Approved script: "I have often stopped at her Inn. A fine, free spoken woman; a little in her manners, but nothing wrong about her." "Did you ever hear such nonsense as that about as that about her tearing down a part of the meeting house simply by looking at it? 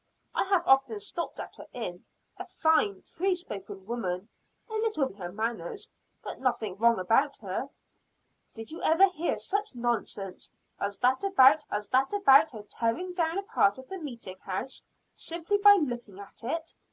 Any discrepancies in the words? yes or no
no